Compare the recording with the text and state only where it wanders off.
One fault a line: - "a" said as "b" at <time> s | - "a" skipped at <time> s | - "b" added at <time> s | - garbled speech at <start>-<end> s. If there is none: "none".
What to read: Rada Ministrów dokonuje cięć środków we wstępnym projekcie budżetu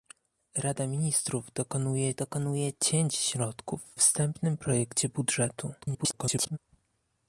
- "dokonuje" added at 2.2 s
- "we" skipped at 3.9 s
- garbled speech at 5.8-6.6 s